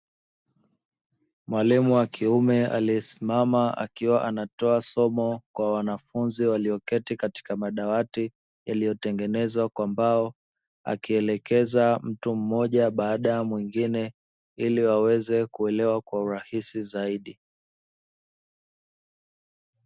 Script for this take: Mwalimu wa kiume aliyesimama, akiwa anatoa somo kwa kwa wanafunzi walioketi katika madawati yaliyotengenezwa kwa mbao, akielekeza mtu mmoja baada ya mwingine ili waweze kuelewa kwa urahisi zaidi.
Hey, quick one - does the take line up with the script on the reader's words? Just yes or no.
no